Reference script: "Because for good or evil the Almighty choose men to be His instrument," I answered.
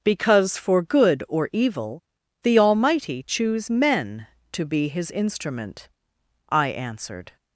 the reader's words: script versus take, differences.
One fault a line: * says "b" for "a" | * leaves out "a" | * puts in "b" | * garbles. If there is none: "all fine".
all fine